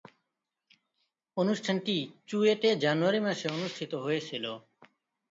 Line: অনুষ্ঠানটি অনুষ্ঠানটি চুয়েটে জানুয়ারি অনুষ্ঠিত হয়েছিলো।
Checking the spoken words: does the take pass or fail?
fail